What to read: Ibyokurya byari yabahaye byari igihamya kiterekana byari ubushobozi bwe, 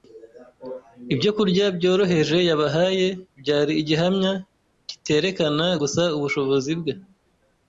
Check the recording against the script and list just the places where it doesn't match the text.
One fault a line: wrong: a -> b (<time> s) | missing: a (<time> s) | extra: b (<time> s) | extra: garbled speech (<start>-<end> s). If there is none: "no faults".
wrong: byari -> byoroheje (1.8 s)
wrong: byari -> gusa (5.8 s)